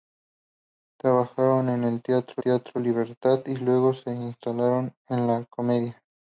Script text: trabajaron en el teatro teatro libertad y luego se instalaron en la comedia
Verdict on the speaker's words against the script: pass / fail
pass